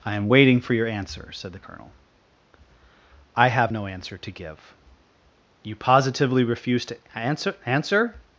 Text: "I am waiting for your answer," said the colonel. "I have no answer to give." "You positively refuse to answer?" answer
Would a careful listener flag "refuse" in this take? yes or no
no